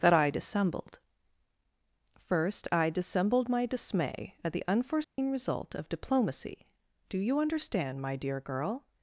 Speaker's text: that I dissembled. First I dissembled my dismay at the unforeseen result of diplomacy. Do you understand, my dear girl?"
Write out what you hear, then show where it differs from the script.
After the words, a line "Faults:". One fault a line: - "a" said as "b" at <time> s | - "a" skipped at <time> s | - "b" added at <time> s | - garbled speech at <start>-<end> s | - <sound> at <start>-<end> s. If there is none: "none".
that I dissembled. First I dissembled my dismay at the unforeseen result of diplomacy. Do you understand, my dear girl?"
Faults:
- dropout at 5.0-5.2 s